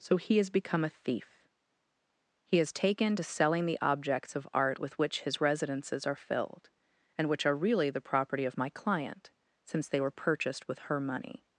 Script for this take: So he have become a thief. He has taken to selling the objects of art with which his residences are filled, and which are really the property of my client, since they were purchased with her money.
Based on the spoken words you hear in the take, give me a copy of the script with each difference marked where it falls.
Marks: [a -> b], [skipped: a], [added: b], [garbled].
So he [have -> has] become a thief. He has taken to selling the objects of art with which his residences are filled, and which are really the property of my client, since they were purchased with her money.